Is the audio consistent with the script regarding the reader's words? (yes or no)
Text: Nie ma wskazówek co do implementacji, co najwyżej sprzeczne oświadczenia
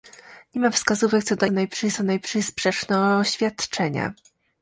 no